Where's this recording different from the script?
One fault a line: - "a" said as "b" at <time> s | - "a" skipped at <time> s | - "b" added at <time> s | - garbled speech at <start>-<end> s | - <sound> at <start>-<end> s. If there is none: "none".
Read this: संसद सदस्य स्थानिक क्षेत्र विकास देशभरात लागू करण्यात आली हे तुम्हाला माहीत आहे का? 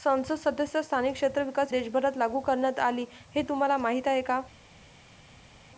none